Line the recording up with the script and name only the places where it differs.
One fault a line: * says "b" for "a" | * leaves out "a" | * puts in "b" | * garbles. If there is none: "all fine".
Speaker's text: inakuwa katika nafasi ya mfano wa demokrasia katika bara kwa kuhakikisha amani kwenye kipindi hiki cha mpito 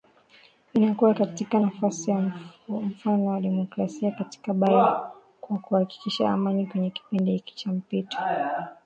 all fine